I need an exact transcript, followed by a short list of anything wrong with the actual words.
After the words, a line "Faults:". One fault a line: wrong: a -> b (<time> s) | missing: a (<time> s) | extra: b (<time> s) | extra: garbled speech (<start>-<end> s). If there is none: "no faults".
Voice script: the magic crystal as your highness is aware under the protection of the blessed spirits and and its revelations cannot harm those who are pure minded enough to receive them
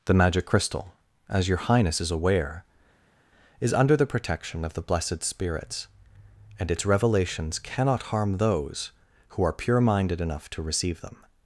the magic crystal as your highness is aware is under the protection of the blessed spirits and its revelations cannot harm those who are pure minded enough to receive them
Faults:
extra: is (3.6 s)
missing: and (6.7 s)